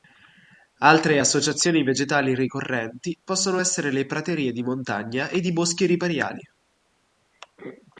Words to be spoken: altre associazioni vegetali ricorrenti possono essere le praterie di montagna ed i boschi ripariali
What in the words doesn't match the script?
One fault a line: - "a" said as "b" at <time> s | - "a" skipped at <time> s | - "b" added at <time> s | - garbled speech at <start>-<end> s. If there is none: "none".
none